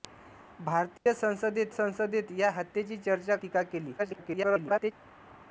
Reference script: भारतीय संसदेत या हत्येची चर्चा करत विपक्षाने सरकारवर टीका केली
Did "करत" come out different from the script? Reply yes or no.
yes